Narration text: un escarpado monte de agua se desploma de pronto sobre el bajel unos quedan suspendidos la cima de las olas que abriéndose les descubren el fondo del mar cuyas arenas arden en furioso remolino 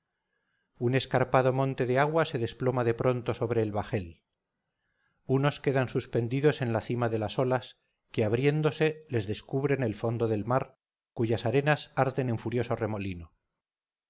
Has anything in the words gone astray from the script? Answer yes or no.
yes